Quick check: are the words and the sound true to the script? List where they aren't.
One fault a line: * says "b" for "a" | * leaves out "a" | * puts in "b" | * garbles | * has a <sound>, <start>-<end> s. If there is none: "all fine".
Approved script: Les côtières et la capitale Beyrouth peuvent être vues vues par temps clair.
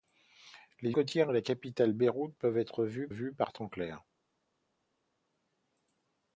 all fine